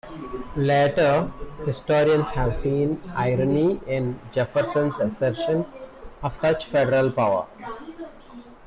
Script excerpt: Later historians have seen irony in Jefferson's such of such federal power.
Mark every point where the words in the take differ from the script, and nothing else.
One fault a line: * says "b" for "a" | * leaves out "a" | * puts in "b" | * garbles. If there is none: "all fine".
* says "assertion" for "such"